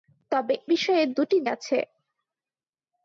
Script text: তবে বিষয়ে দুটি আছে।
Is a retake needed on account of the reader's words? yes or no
no